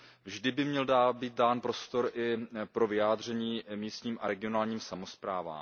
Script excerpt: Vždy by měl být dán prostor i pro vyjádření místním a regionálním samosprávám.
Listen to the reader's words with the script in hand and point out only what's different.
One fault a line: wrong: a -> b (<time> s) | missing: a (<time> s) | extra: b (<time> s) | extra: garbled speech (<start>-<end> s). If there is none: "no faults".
no faults